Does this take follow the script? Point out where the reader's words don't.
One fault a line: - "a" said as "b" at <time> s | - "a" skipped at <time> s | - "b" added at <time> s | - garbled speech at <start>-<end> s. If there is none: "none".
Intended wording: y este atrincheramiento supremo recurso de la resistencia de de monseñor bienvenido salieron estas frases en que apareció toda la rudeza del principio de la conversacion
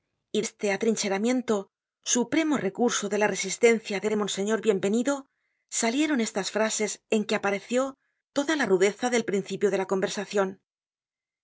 none